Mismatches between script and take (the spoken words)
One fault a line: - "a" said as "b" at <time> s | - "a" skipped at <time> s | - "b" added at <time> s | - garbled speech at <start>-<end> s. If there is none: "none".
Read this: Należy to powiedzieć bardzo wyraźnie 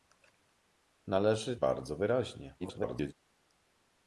- "to powiedzieć" skipped at 1.6 s
- garbled speech at 2.6-3.1 s